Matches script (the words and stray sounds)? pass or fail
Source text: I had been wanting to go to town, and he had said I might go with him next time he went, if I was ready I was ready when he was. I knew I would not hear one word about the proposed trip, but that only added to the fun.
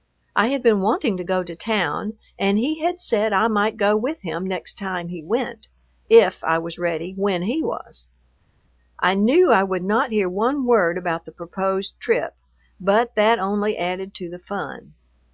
fail